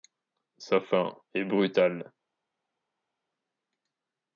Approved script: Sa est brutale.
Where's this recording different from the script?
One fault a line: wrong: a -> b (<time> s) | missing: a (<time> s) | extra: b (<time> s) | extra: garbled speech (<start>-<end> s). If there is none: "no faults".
extra: fin (0.8 s)